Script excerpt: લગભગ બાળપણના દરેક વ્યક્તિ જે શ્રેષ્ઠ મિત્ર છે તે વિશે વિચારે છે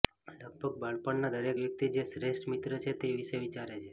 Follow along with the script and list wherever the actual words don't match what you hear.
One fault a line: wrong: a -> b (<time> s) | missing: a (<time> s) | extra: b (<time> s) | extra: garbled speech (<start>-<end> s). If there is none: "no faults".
no faults